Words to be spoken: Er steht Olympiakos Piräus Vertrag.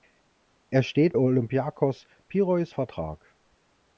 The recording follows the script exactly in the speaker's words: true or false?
true